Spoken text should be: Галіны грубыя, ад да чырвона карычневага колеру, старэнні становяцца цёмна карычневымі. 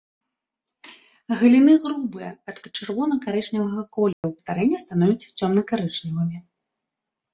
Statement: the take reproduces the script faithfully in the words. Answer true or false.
true